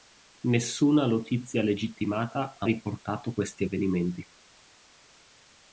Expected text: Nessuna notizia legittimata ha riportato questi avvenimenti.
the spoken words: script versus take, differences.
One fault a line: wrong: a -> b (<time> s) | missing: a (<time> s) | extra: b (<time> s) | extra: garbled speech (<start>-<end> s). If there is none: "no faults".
no faults